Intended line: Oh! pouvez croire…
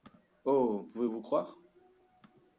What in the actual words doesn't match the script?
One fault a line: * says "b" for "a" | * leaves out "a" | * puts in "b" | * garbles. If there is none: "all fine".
* puts in "vous"